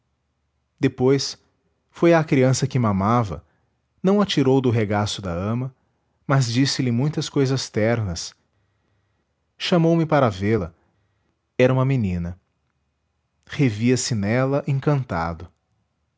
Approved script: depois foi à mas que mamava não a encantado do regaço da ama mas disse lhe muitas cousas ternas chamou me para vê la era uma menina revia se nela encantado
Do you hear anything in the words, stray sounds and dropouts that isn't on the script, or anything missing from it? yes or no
yes